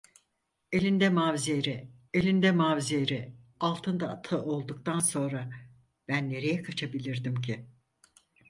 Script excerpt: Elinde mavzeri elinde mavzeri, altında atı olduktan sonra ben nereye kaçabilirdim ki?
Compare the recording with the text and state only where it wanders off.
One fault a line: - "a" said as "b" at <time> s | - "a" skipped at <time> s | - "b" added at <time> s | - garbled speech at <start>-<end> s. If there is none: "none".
none